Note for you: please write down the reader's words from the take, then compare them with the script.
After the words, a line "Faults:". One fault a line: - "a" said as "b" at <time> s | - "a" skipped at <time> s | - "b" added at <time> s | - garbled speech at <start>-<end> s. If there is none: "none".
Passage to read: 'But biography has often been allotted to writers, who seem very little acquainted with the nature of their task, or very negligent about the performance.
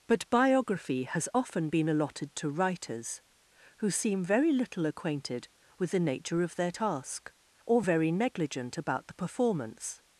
'But biography has often been allotted to writers, who seem very little acquainted with the nature of their task, or very negligent about the performance.
Faults:
none